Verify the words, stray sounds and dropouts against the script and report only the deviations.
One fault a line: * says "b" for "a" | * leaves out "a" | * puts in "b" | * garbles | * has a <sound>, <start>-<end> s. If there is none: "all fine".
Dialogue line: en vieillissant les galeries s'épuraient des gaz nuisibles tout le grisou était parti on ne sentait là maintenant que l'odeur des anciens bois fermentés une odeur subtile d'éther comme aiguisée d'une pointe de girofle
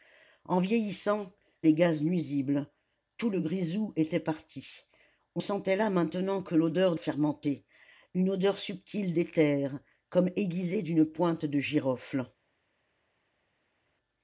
* leaves out "les galeries s'épuraient"
* leaves out "ne"
* leaves out "des anciens bois"